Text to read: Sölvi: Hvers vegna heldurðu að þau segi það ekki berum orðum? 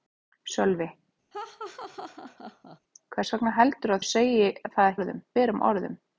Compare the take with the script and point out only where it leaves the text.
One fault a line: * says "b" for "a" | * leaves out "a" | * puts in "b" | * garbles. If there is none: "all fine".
* leaves out "að"
* says "orðum" for "ekki"